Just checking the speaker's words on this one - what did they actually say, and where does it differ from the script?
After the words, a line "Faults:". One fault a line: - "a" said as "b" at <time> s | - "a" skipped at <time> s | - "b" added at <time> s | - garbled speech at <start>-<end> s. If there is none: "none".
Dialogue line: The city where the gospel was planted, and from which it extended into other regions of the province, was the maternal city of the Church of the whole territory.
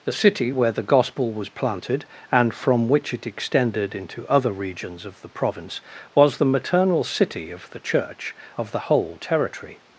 The city where the gospel was planted, and from which it extended into other regions of the province, was the maternal city of the Church of the whole territory.
Faults:
none